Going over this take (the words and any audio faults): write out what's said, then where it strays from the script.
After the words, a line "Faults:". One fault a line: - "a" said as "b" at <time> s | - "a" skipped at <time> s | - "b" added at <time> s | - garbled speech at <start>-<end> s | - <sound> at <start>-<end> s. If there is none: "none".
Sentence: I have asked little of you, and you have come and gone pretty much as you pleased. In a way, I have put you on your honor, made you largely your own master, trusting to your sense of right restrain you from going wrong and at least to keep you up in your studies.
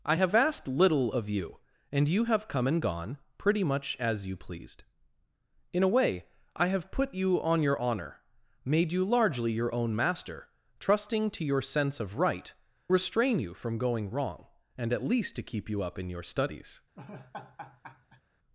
I have asked little of you, and you have come and gone pretty much as you pleased. In a way, I have put you on your honor, made you largely your own master, trusting to your sense of right restrain you from going wrong and at least to keep you up in your studies.
Faults:
- laugh at 17.0-18.2 s